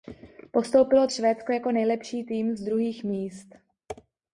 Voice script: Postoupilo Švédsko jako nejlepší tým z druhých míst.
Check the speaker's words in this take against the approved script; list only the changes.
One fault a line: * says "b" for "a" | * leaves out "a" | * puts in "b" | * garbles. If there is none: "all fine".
all fine